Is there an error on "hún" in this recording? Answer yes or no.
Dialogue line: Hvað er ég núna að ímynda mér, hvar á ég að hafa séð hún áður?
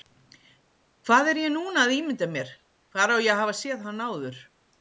yes